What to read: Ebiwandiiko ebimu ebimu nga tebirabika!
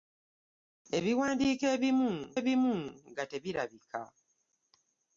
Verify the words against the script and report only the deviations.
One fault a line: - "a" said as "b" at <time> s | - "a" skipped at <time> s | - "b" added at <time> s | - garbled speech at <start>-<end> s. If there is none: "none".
none